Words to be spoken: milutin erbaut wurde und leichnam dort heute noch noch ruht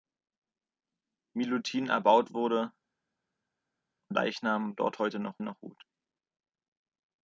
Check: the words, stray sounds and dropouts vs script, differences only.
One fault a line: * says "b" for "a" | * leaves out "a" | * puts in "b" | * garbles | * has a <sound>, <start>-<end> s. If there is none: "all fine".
all fine